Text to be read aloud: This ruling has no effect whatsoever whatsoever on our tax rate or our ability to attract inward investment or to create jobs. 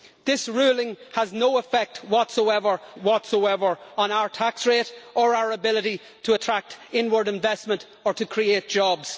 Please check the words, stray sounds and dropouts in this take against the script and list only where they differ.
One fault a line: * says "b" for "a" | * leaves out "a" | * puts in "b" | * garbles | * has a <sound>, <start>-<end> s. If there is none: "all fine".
all fine